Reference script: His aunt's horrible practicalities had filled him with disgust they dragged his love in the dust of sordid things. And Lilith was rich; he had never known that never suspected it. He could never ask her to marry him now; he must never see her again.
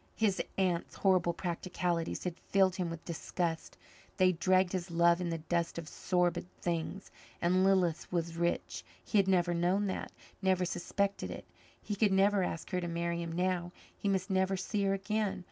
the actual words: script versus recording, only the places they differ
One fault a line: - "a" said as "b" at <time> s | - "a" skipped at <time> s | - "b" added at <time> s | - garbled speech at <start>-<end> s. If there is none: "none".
none